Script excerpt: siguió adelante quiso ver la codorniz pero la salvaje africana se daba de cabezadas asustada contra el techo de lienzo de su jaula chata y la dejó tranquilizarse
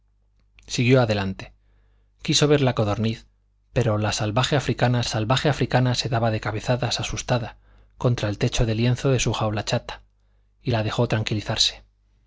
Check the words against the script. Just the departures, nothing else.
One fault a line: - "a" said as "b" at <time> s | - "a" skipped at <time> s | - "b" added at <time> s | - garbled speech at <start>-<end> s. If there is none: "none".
- "salvaje africana" added at 5.1 s